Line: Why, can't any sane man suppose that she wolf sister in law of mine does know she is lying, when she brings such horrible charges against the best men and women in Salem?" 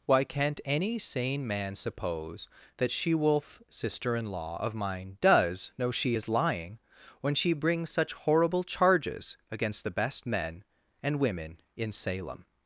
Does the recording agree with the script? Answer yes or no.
yes